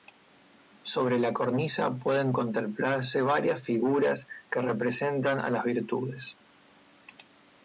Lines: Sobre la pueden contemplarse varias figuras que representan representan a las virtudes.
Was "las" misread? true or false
false